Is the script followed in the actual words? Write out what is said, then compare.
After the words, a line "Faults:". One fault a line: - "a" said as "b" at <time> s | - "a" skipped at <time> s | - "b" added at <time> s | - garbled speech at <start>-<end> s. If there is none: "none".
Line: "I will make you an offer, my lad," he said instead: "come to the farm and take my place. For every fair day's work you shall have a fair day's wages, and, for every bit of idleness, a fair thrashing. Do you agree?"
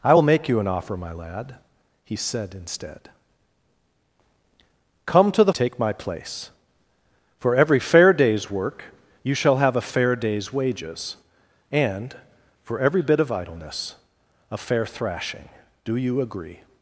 "I will make you an offer, my lad," he said instead: "come to the take my place. For every fair day's work you shall have a fair day's wages, and, for every bit of idleness, a fair thrashing. Do you agree?"
Faults:
- "farm and" skipped at 5.5 s